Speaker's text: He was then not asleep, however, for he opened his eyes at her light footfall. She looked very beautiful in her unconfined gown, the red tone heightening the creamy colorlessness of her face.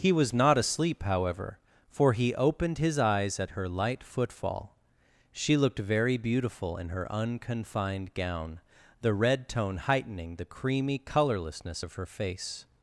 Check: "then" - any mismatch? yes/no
yes